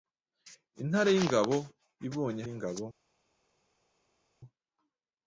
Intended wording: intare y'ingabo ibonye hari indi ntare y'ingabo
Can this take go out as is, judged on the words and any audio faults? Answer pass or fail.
fail